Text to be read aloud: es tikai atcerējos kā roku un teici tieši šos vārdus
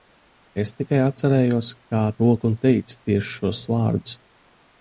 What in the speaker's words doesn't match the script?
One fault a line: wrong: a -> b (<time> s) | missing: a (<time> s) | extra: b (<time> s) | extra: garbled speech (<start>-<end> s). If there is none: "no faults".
no faults